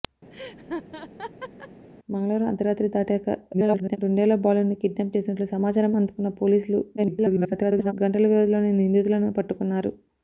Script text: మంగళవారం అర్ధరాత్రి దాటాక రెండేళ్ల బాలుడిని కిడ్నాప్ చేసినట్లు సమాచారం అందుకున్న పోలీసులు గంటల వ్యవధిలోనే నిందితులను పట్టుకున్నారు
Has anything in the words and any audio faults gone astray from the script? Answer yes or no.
yes